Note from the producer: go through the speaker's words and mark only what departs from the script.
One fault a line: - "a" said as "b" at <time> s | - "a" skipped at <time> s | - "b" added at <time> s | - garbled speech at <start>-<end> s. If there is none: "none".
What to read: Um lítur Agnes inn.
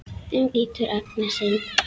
none